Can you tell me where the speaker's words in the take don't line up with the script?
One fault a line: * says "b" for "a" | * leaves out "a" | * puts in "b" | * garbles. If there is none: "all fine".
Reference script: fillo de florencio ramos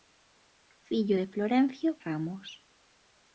all fine